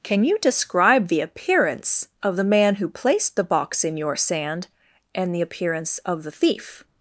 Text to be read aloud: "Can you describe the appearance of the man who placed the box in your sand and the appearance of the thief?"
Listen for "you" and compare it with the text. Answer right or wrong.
right